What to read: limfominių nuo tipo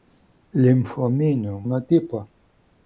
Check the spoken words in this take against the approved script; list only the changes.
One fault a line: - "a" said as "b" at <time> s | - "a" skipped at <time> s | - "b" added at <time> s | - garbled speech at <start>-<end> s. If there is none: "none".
none